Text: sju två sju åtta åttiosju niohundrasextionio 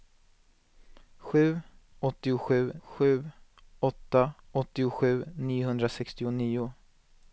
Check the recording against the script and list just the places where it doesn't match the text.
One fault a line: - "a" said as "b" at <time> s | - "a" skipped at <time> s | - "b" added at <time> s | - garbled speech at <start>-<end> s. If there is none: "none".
- "två" said as "åttiosju" at 2.0 s